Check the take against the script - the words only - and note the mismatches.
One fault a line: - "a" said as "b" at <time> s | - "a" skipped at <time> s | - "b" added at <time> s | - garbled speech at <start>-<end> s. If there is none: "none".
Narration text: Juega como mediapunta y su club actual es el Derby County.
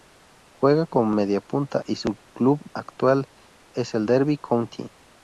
none